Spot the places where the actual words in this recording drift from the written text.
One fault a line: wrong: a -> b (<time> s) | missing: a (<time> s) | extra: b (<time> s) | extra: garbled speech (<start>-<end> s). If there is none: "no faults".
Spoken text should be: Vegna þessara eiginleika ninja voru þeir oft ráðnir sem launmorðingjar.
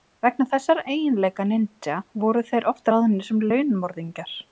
no faults